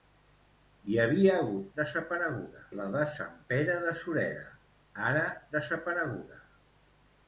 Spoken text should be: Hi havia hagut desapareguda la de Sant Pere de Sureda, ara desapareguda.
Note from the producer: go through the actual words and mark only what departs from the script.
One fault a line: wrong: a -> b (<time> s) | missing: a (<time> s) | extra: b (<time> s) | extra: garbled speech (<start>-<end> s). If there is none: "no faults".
no faults